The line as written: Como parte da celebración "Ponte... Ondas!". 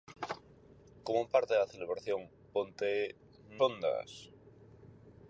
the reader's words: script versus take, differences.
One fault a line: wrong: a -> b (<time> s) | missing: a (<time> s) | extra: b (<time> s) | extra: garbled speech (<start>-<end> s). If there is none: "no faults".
no faults